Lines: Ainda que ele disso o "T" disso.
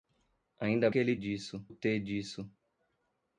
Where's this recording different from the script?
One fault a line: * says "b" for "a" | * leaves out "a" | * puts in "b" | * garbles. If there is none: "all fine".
all fine